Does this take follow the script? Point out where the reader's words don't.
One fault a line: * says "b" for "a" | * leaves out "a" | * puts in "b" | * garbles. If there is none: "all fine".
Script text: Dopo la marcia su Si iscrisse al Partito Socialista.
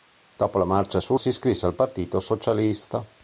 all fine